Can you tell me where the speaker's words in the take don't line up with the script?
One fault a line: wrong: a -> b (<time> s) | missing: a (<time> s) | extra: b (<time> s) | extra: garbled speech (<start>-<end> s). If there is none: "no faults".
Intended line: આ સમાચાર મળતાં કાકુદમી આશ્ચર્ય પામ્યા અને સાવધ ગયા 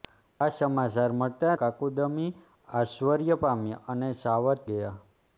no faults